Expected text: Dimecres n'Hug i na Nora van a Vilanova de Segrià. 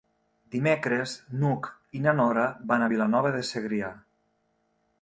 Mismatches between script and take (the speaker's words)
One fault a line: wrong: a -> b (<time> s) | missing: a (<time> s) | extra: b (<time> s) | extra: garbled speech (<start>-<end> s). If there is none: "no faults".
no faults